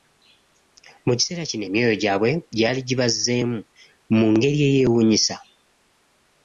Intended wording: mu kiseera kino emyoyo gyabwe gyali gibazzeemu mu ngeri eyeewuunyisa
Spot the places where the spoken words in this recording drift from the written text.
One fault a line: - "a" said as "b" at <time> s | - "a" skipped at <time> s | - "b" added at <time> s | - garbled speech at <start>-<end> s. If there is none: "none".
none